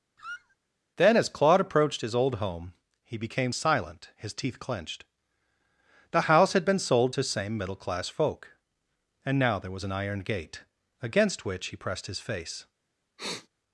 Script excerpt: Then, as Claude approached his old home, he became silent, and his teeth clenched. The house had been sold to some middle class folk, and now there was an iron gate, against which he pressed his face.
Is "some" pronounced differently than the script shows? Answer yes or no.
yes